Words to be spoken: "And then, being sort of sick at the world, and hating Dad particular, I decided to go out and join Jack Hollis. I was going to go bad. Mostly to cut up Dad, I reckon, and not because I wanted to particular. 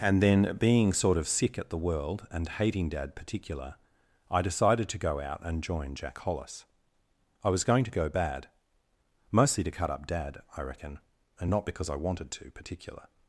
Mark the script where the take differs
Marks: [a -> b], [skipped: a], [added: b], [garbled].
"And then, being sort of sick at the world, and hating Dad particular, I decided to go out and join Jack Hollis. I was going to go bad. Mostly to cut up Dad, I reckon, and not because I wanted to particular.